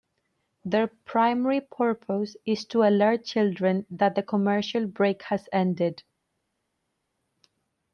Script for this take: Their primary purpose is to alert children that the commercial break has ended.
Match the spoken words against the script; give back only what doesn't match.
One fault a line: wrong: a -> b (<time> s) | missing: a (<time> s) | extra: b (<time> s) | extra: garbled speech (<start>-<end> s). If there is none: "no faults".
no faults